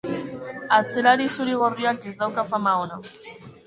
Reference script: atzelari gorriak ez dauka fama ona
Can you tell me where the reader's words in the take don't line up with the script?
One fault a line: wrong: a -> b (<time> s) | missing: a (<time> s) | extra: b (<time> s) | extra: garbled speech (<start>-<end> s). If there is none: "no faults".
extra: zuri (1.4 s)